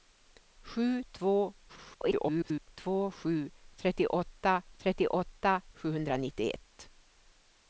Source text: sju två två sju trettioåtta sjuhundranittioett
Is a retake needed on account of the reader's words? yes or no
yes